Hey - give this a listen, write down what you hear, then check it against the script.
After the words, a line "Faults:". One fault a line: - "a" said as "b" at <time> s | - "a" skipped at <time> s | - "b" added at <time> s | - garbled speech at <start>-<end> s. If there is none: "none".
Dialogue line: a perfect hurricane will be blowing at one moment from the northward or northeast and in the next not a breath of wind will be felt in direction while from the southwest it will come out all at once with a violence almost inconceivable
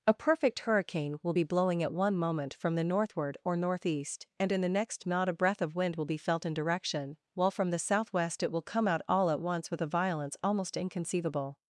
a perfect hurricane will be blowing at one moment from the northward or northeast and in the next not a breath of wind will be felt in direction while from the southwest it will come out all at once with a violence almost inconceivable
Faults:
none